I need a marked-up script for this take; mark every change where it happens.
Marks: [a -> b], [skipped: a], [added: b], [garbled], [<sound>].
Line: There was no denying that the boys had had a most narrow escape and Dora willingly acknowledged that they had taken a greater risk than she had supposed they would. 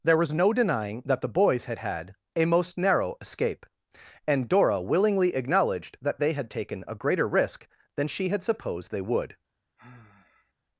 There was no denying that the boys had had a most narrow escape and Dora willingly acknowledged that they had taken a greater risk than she had supposed they would. [sigh]